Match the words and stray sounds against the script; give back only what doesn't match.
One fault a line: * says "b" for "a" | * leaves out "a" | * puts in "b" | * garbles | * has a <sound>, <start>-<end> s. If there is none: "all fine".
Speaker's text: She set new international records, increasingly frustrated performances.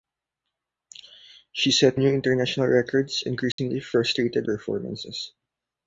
* has a dropout, 3.5-3.6 s